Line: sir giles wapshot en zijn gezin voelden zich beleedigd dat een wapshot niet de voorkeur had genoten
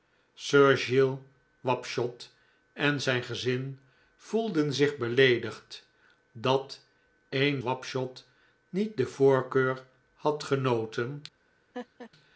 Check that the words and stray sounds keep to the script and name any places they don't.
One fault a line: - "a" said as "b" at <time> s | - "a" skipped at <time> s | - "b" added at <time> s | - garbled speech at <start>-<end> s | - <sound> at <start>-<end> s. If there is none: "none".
- laugh at 11.7-12.1 s